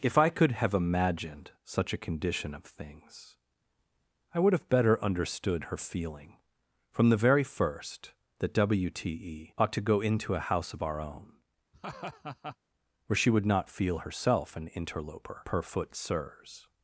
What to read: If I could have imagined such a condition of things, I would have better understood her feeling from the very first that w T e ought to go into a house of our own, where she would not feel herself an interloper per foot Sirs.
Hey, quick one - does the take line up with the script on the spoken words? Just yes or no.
yes